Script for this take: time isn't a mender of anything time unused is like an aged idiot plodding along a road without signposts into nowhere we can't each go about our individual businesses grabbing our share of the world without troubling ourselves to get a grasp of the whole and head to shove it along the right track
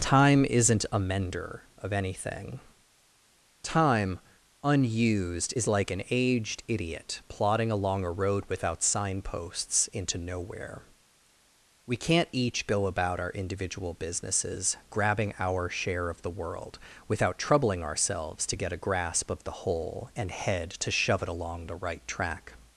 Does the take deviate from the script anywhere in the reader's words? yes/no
no